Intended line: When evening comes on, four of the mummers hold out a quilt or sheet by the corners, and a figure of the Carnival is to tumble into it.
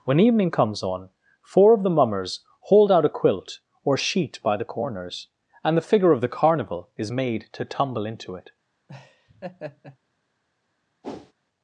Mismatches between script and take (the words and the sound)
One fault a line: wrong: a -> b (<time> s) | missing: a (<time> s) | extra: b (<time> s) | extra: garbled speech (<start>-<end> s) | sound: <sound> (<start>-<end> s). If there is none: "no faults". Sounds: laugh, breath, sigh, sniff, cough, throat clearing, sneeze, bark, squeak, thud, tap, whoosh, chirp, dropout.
wrong: a -> the (5.8 s)
extra: made (7.1 s)
sound: laugh (8.9-10.0 s)
sound: whoosh (11.0-11.3 s)